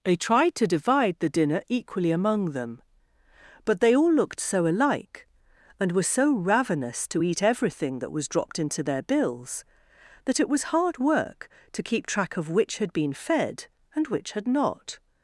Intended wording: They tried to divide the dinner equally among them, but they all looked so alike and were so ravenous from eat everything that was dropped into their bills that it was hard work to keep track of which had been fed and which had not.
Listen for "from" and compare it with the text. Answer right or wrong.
wrong